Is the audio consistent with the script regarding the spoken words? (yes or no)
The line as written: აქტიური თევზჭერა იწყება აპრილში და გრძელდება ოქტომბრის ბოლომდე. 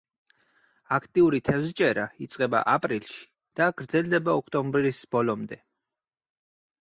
yes